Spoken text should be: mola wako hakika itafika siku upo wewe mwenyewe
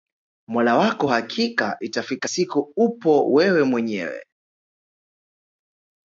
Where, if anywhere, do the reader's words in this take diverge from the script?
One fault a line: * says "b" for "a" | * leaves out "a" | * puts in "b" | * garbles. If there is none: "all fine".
all fine